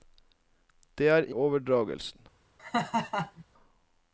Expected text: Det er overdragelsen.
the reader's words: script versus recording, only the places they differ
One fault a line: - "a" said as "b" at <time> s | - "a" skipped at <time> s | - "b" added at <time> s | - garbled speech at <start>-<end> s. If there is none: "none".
none